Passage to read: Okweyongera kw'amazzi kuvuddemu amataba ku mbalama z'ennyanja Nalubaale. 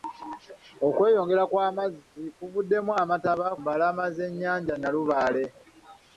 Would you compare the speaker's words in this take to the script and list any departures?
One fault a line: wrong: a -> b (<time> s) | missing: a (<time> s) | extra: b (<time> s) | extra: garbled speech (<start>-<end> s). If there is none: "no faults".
missing: ku (3.5 s)